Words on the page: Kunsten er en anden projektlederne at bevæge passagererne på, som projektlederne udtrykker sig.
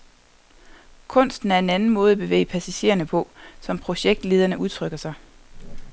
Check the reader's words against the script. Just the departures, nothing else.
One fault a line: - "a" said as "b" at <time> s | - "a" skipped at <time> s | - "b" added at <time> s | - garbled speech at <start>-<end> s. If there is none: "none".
- "projektlederne" said as "måde" at 1.9 s